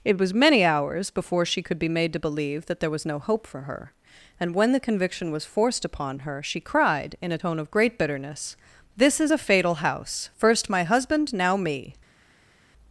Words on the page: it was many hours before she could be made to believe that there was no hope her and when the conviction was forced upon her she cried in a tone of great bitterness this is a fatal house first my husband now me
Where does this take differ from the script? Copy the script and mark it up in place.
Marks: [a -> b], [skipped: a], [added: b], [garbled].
it was many hours before she could be made to believe that there was no hope [added: for] her and when the conviction was forced upon her she cried in a tone of great bitterness this is a fatal house first my husband now me